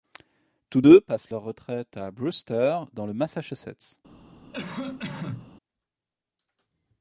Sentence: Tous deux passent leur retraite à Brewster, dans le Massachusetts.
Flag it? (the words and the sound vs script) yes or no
yes